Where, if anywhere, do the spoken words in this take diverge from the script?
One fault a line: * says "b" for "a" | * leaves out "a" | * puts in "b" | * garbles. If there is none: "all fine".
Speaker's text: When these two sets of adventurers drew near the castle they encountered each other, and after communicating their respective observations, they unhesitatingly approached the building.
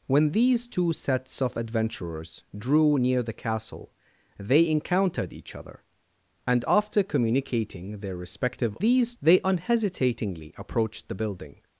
* says "these" for "observations"